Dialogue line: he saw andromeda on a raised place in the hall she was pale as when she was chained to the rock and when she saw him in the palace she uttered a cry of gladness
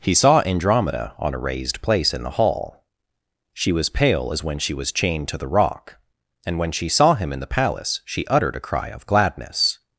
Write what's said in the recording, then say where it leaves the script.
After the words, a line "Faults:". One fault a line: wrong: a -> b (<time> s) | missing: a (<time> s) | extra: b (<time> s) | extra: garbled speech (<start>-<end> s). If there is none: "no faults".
he saw andromeda on a raised place in the hall she was pale as when she was chained to the rock and when she saw him in the palace she uttered a cry of gladness
Faults:
no faults